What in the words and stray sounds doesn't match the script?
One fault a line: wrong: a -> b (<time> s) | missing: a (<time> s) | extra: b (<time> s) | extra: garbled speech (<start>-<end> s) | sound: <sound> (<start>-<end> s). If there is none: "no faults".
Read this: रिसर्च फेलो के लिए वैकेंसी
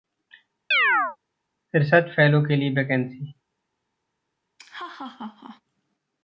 sound: chirp (0.7-1.2 s)
sound: laugh (4.6-5.6 s)